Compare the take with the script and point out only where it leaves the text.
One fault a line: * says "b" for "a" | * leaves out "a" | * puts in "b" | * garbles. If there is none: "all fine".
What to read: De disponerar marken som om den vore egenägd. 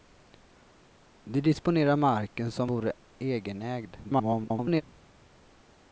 * leaves out "om den"
* garbles